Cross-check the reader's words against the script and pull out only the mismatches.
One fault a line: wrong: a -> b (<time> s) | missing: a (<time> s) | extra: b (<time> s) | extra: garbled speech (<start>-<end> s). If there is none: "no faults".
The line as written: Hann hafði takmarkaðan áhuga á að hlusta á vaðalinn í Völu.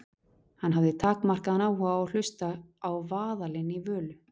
no faults